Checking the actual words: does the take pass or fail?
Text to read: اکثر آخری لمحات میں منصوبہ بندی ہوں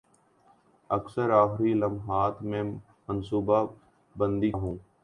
pass